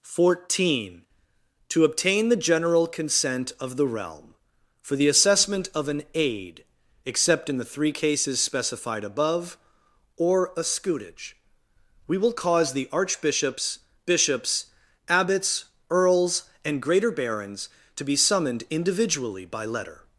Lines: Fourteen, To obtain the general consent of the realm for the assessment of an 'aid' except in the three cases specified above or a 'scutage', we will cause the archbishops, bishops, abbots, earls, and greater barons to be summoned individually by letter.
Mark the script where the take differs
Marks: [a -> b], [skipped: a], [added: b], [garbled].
Fourteen, To obtain the general consent of the realm for the assessment of an 'aid' except in the three cases specified above or a 'scutage', we will cause the archbishops, bishops, abbots, earls, and greater barons to be summoned individually by letter.